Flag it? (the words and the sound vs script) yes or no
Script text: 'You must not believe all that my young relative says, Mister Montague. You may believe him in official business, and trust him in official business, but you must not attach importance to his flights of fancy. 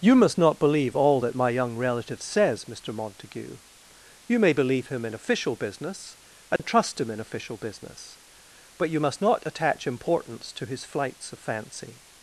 yes